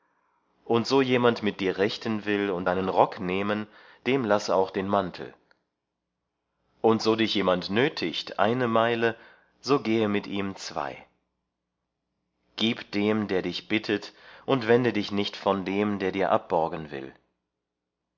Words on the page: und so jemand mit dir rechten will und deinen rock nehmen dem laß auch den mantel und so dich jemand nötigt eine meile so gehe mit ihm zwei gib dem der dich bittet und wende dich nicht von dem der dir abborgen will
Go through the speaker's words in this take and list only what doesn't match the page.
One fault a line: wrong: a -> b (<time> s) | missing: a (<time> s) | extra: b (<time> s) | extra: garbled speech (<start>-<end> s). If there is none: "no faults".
no faults